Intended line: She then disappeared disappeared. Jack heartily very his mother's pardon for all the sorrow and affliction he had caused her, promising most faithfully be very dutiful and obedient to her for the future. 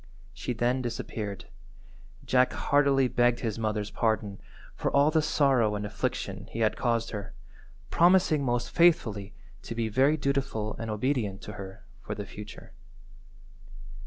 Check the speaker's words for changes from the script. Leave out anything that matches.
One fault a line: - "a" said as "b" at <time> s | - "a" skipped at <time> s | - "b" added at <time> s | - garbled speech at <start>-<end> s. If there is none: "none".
- "disappeared" skipped at 1.4 s
- "very" said as "begged" at 3.1 s
- "to" added at 9.6 s